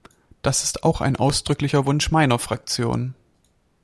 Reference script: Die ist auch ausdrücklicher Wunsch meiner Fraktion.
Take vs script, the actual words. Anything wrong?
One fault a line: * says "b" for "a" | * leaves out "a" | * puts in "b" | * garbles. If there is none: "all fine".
* says "Das" for "Die"
* puts in "ein"